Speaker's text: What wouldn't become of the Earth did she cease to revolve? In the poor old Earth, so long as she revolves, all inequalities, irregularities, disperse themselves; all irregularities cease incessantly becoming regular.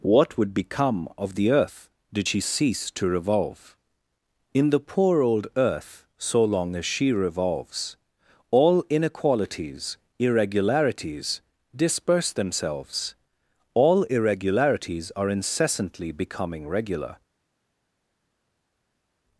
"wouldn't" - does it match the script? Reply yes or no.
no